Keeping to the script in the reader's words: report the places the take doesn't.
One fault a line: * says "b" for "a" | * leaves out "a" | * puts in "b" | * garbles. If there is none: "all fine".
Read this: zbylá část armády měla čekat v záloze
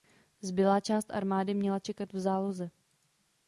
all fine